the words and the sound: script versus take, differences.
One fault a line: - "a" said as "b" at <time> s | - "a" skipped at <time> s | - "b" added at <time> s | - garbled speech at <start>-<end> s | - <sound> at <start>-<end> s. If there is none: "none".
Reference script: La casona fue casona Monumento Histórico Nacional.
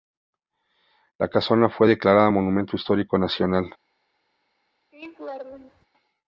- "casona" said as "declarada" at 1.9 s
- laugh at 4.9-5.9 s